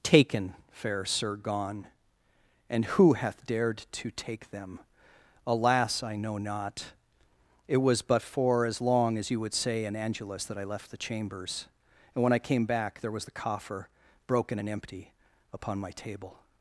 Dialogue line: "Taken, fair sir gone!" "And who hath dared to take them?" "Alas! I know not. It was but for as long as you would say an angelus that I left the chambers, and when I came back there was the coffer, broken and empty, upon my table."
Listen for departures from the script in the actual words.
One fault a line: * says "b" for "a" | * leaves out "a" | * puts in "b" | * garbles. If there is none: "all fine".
all fine